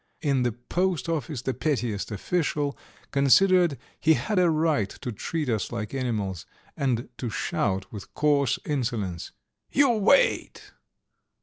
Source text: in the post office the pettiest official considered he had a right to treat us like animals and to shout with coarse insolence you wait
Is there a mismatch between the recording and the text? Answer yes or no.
no